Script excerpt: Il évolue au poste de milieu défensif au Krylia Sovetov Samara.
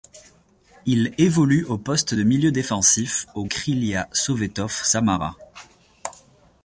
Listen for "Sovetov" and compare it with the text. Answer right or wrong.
right